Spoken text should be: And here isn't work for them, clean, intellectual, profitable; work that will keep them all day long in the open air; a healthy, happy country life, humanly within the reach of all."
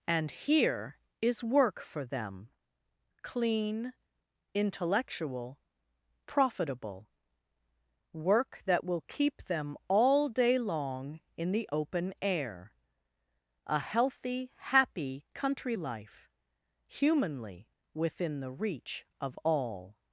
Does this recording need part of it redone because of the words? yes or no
yes